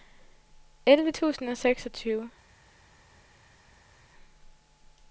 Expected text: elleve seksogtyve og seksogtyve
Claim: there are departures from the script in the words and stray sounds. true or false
true